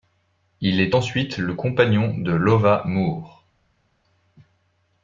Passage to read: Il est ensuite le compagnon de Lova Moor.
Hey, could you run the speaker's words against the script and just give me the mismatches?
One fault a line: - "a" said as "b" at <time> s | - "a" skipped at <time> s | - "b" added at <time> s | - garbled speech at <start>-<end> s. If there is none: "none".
none